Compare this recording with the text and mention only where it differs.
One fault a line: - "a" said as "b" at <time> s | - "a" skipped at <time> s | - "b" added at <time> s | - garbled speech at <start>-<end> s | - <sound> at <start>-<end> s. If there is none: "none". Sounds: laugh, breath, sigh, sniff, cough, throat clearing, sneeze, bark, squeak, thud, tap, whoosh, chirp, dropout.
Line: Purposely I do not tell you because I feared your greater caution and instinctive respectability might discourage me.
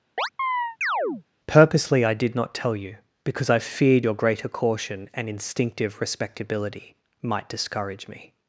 - chirp at 0.2-1.2 s
- "do" said as "did" at 2.1 s